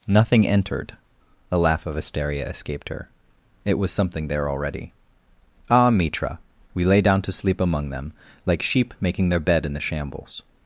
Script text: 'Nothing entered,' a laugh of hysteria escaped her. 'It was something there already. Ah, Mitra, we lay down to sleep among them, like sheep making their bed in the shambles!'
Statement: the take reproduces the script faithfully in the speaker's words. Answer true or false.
true